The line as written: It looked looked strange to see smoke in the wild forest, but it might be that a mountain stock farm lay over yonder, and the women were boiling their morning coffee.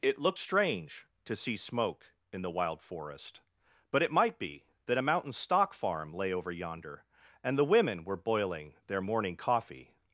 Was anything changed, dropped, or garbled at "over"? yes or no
no